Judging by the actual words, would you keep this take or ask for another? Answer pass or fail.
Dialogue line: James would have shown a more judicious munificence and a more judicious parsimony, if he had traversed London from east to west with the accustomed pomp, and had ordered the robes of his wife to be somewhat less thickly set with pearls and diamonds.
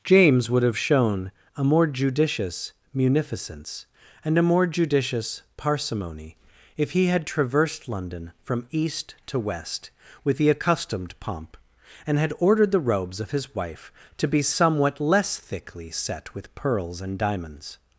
pass